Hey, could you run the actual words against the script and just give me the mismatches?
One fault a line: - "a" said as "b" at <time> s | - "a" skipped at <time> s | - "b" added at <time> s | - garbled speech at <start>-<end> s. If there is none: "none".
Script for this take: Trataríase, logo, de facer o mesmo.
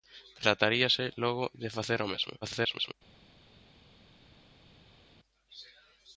- garbled speech at 2.4-2.9 s